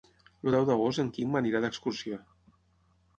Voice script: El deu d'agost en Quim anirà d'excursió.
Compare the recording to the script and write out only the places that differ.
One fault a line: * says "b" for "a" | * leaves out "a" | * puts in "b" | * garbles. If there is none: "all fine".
all fine